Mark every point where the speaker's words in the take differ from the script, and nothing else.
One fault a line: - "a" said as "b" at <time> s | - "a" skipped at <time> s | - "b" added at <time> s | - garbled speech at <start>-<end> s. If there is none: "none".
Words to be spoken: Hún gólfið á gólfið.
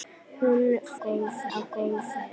none